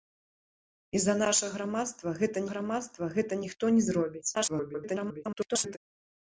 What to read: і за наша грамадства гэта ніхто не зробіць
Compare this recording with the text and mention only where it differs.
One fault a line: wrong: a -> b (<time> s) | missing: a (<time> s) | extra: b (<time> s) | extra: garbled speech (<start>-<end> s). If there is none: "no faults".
extra: грамадства гэта (2.5 s)
extra: garbled speech (4.3-5.8 s)